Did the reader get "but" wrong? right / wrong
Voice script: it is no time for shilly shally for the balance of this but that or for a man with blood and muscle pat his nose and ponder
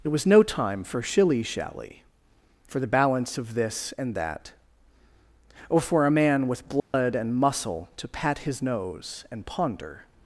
wrong